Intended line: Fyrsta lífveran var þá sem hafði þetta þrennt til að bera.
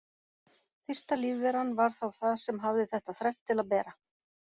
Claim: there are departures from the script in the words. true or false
true